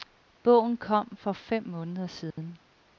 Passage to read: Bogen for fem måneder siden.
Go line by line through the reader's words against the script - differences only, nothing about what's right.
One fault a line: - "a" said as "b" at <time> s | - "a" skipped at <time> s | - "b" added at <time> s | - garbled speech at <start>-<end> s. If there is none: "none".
- "kom" added at 0.8 s